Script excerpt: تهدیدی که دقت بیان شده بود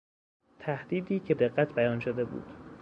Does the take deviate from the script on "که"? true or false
false